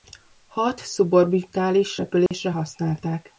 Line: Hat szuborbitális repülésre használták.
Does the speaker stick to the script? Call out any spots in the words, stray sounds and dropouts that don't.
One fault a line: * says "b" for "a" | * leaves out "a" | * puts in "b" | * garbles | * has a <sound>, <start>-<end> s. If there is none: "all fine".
* has a dropout, 2.3-2.3 s